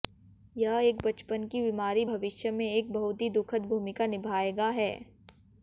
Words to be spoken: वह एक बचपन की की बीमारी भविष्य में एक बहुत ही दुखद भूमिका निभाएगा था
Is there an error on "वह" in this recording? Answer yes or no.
yes